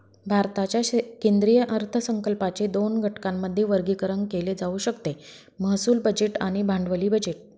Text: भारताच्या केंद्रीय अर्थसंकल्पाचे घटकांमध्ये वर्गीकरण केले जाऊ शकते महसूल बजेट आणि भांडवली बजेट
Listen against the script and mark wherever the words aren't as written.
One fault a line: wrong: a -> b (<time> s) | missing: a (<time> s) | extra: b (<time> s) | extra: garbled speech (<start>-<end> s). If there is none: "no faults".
extra: दोन (2.7 s)